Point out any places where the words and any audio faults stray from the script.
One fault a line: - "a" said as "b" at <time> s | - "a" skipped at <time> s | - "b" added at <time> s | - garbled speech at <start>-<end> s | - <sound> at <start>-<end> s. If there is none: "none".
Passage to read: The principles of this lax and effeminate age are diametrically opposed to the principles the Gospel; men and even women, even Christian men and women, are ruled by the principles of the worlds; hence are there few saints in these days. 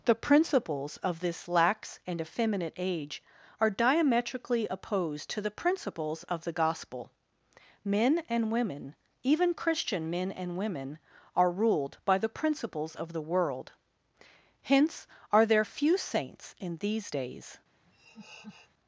- "of" added at 6.2 s
- "even" skipped at 8.5 s
- "worlds" said as "world" at 13.2 s
- laugh at 17.8-18.7 s